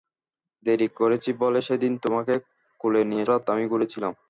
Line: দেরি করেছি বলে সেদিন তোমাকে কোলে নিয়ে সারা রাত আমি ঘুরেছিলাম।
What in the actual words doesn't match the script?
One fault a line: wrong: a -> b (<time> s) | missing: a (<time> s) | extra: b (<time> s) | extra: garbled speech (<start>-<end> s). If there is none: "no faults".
missing: সারা (3.2 s)